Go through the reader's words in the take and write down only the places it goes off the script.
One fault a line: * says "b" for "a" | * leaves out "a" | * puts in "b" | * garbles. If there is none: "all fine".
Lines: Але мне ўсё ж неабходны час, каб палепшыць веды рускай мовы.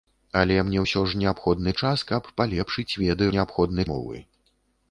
* says "неабходны" for "рускай"